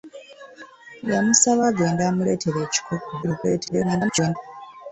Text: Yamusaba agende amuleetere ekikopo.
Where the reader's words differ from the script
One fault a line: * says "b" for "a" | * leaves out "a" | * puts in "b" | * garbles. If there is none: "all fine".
* garbles